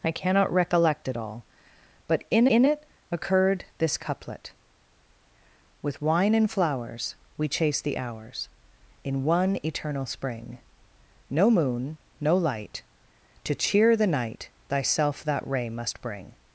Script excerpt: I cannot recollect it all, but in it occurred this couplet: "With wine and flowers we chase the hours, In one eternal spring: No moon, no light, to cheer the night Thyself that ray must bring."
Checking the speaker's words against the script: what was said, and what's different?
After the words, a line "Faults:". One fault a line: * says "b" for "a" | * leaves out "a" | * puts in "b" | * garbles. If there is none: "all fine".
I cannot recollect it all, but in in it occurred this couplet: "With wine and flowers we chase the hours, In one eternal spring: No moon, no light, to cheer the night Thyself that ray must bring."
Faults:
* puts in "in"